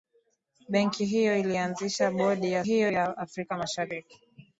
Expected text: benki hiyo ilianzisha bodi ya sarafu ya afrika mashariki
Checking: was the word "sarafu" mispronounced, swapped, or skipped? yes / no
yes